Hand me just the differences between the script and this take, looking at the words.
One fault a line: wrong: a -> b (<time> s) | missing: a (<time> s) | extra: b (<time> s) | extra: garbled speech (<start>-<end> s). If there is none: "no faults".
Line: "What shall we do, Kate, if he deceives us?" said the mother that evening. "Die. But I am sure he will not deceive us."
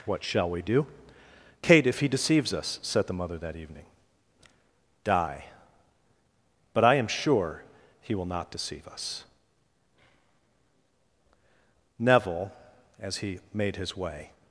extra: Neville as he made his way (12.0 s)